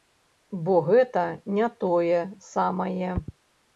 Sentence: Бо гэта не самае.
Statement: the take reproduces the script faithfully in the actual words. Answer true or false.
false